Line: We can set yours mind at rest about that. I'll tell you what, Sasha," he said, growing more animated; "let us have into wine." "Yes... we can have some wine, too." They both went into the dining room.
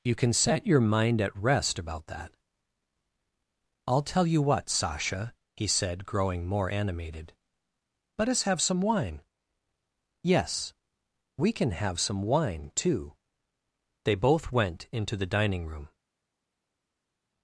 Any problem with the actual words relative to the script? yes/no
yes